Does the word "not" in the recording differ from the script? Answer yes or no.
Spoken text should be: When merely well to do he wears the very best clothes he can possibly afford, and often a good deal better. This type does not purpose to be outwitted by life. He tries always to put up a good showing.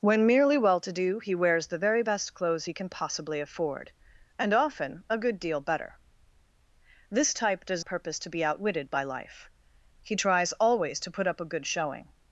yes